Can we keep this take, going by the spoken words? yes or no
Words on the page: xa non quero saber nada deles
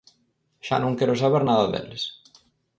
yes